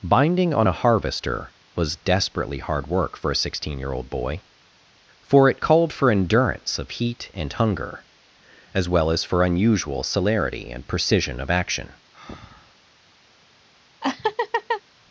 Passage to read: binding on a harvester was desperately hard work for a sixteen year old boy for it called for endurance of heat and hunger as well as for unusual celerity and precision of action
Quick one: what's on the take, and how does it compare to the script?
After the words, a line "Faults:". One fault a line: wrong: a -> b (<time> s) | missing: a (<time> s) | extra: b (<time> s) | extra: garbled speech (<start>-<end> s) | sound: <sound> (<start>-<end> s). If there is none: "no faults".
binding on a harvester was desperately hard work for a sixteen year old boy for it called for endurance of heat and hunger as well as for unusual celerity and precision of action
Faults:
sound: breath (12.1-12.7 s)
sound: laugh (14.0-14.8 s)